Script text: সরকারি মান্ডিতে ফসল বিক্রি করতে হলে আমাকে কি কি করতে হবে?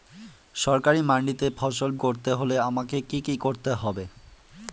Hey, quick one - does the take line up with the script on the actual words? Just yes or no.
no